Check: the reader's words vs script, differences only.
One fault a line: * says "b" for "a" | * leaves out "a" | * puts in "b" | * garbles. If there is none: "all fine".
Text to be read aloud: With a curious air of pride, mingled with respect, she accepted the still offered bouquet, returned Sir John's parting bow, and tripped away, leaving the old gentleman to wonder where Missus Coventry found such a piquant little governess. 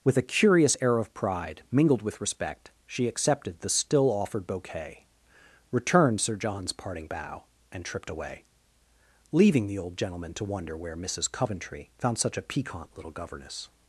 all fine